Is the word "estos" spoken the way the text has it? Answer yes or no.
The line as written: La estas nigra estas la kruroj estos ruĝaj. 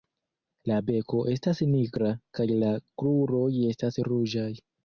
no